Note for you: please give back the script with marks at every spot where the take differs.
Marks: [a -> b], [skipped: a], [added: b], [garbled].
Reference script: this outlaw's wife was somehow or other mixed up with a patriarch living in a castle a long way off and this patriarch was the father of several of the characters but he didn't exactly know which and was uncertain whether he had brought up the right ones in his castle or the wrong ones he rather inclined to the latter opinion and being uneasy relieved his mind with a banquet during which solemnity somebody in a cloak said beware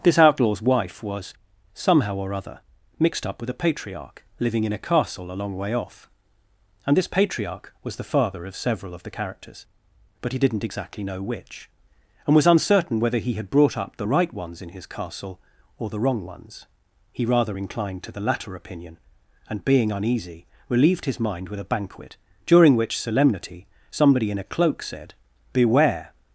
this outlaw's wife was somehow or other mixed up with a patriarch living in a castle a long way off and this patriarch was the father of several of the characters but he didn't exactly know which and was uncertain whether he had brought up the right ones in his castle or the wrong ones he rather inclined to the latter opinion and being uneasy relieved his mind with a banquet during which solemnity somebody in a cloak said beware